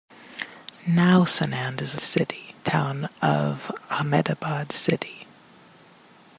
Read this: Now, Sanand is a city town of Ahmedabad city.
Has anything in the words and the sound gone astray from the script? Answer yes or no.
no